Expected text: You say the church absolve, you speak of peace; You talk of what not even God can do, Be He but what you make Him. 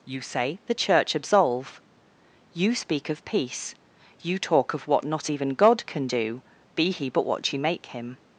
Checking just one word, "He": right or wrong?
right